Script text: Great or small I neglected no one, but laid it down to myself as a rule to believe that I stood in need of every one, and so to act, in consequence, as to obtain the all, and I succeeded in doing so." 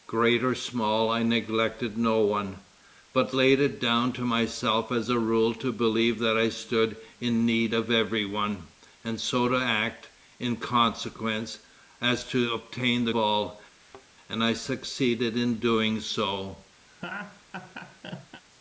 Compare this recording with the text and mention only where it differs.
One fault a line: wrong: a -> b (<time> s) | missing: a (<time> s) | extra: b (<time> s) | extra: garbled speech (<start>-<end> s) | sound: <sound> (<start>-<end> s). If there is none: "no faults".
sound: thud (13.8-14.1 s)
sound: laugh (16.9-18.4 s)